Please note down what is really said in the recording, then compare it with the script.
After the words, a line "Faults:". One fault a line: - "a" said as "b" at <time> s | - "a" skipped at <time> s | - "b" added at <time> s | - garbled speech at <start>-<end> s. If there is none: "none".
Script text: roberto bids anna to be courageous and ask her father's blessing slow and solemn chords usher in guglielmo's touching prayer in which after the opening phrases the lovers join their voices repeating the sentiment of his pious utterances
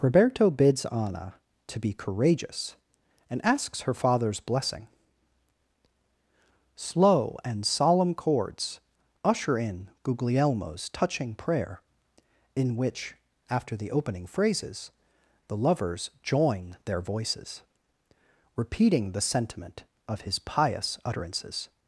roberto bids anna to be courageous and asks her father's blessing slow and solemn chords usher in guglielmo's touching prayer in which after the opening phrases the lovers join their voices repeating the sentiment of his pious utterances
Faults:
- "ask" said as "asks" at 3.5 s